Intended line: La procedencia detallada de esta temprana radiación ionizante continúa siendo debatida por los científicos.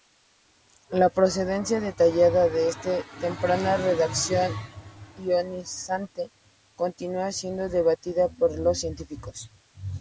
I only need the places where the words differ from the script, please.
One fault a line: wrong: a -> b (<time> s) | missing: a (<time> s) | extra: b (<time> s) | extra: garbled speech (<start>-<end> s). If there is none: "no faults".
no faults